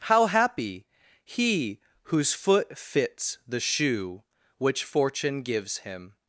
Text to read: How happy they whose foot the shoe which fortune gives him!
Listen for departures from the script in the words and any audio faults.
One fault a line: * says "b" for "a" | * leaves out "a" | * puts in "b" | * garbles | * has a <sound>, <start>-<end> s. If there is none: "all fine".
* says "he" for "they"
* puts in "fits"